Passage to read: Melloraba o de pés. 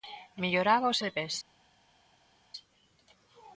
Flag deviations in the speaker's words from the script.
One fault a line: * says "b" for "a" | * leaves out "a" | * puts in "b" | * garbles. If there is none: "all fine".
all fine